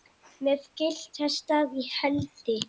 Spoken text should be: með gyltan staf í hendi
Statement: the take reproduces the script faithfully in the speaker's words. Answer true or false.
true